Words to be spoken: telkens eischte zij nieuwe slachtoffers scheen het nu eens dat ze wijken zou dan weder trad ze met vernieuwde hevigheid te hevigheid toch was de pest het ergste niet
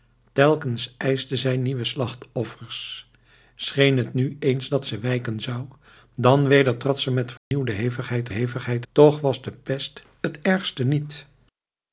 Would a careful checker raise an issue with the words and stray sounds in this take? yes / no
yes